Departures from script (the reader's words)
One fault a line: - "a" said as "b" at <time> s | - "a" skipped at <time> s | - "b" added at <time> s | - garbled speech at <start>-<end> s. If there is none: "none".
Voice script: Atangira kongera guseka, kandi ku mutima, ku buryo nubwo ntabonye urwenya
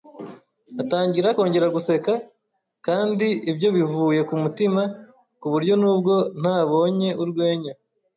- "ibyo bivuye" added at 3.5 s